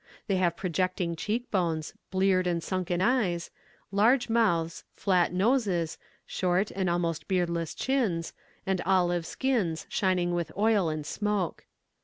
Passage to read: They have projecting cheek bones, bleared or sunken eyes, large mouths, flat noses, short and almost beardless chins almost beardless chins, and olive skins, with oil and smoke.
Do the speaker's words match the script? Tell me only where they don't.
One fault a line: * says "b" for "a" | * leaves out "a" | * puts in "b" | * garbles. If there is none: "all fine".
* says "and" for "or"
* leaves out "almost beardless chins"
* puts in "shining"